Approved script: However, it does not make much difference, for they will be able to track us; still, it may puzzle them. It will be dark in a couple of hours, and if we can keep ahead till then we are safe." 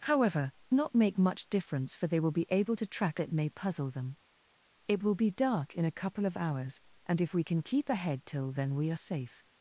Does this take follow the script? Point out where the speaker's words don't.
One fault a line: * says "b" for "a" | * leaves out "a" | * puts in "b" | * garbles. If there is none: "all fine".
* leaves out "it does"
* leaves out "us still"